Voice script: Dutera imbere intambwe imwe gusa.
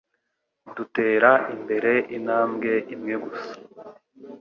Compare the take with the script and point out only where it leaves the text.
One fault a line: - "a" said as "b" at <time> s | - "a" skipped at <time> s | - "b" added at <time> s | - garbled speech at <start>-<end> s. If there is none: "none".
none